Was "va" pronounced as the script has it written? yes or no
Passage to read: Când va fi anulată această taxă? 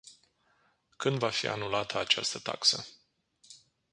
yes